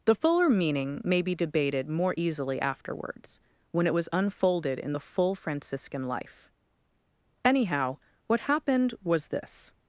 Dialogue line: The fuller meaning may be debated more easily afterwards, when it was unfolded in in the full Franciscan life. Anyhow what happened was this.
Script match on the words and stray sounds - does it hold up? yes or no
no